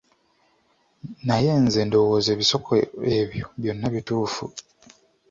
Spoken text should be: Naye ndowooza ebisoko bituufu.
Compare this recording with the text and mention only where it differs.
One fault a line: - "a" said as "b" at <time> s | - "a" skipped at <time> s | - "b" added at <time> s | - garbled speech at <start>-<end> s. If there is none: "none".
- "nze" added at 1.6 s
- "ebyo byonna" added at 3.2 s